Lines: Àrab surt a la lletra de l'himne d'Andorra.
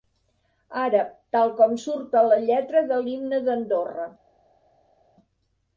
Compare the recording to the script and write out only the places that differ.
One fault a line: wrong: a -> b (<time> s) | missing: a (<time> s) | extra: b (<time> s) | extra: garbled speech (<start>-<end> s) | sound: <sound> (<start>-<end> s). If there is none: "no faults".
extra: tal com (1.4 s)